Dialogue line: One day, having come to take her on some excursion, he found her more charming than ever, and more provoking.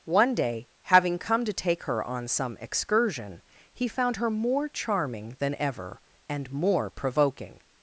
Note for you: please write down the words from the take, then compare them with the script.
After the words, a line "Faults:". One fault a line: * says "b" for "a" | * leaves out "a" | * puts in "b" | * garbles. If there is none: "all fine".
One day, having come to take her on some excursion, he found her more charming than ever, and more provoking.
Faults:
all fine